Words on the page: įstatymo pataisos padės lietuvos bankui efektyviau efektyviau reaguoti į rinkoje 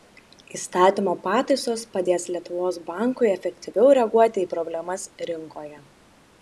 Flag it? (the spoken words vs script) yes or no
yes